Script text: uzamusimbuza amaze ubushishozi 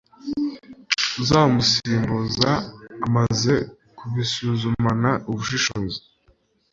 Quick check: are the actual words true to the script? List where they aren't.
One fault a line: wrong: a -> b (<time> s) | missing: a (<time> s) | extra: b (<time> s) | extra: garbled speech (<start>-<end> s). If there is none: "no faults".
extra: kubisuzumana (4.0 s)